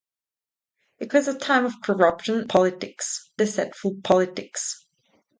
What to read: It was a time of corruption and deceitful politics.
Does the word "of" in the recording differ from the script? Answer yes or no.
no